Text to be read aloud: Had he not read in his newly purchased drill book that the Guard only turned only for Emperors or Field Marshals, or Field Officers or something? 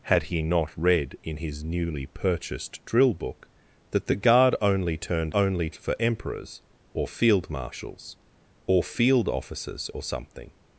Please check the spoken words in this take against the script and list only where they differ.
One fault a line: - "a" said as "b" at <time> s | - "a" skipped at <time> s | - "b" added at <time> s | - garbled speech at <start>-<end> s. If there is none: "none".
none